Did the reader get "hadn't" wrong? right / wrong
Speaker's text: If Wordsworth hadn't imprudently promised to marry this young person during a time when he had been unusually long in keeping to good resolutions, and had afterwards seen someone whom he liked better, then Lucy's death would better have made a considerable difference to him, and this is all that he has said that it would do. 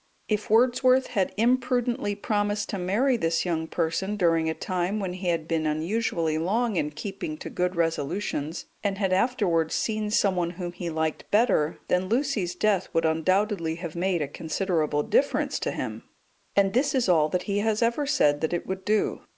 wrong